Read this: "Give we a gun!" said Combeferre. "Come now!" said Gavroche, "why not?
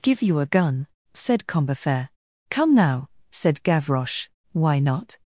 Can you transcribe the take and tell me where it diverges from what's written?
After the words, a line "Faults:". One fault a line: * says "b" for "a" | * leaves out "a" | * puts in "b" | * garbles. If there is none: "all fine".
"Give you a gun!" said Combeferre. "Come now!" said Gavroche, "why not?
Faults:
* says "you" for "we"